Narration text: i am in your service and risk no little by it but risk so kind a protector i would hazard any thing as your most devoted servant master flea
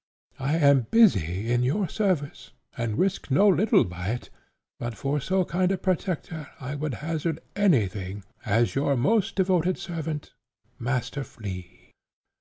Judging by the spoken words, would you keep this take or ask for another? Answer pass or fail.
fail